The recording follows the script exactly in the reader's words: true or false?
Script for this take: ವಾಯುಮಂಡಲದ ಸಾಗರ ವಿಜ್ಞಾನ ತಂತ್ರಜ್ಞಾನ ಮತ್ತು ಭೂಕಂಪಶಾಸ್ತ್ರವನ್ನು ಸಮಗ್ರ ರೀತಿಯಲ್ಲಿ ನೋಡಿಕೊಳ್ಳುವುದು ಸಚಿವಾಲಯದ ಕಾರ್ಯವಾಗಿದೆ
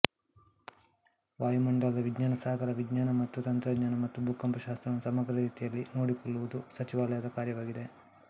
false